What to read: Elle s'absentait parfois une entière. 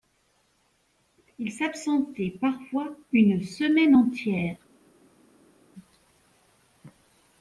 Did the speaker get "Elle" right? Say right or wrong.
wrong